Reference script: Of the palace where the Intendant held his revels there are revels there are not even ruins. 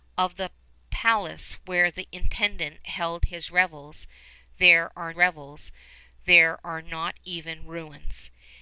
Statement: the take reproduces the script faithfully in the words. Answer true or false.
true